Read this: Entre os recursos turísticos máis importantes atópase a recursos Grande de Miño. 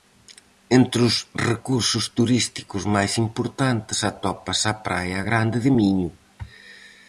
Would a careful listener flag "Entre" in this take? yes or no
no